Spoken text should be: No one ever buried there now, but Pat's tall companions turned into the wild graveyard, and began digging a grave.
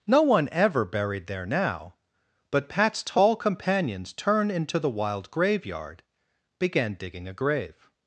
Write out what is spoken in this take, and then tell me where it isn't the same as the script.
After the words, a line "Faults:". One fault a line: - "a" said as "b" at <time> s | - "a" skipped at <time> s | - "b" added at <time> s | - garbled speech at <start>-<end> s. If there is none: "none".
No one ever buried there now, but Pat's tall companions turned into the wild graveyard, began digging a grave.
Faults:
- "and" skipped at 6.0 s